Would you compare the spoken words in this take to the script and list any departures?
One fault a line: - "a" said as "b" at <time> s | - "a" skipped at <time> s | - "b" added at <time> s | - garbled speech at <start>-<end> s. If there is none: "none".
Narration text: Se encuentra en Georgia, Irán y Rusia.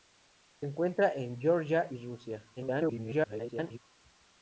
- "Irán" skipped at 1.9 s
- garbled speech at 2.6-3.8 s